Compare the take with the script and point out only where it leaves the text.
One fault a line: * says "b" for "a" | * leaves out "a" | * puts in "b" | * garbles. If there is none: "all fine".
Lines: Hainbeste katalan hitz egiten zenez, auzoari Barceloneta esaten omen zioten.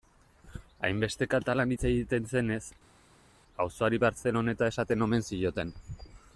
all fine